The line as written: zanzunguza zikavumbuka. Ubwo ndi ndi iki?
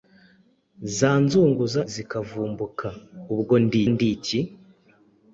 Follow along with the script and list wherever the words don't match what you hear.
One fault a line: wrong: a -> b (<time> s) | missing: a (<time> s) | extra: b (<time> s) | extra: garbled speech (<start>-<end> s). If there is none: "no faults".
no faults